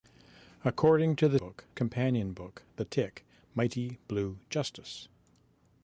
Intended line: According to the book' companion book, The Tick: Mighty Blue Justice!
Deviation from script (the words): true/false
false